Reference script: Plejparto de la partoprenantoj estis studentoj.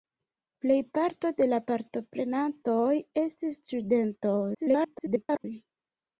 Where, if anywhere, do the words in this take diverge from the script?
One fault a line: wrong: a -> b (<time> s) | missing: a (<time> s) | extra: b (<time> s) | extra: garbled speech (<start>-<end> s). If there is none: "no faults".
extra: garbled speech (4.5-5.5 s)